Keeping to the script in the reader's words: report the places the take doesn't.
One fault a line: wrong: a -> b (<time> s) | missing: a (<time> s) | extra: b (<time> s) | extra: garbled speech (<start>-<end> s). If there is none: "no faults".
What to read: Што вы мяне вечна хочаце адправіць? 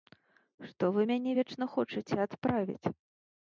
no faults